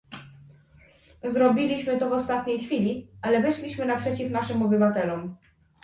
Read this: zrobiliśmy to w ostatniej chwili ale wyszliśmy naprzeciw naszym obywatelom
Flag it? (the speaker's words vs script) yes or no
no